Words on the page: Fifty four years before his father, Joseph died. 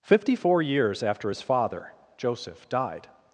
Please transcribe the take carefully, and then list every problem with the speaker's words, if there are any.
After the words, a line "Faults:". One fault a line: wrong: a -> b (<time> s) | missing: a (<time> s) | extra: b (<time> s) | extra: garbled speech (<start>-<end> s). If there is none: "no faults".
Fifty four years after his father, Joseph died.
Faults:
wrong: before -> after (1.0 s)